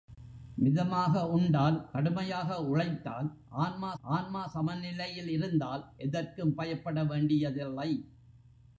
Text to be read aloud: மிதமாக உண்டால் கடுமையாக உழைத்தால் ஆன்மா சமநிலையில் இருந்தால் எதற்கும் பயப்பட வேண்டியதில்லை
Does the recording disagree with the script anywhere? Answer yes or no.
yes